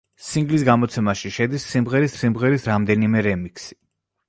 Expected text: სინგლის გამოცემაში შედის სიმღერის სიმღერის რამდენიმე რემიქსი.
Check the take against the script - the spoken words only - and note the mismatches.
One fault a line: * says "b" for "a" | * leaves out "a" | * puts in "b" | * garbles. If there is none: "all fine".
all fine